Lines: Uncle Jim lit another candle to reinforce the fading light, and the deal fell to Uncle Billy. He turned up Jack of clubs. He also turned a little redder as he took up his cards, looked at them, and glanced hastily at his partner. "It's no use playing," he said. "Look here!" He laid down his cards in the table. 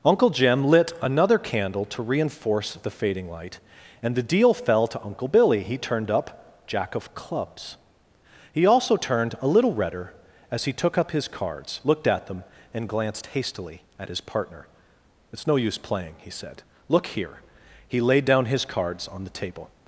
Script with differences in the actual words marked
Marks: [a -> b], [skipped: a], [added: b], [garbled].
Uncle Jim lit another candle to reinforce the fading light, and the deal fell to Uncle Billy. He turned up Jack of clubs. He also turned a little redder as he took up his cards, looked at them, and glanced hastily at his partner. "It's no use playing," he said. "Look here!" He laid down his cards [in -> on] the table.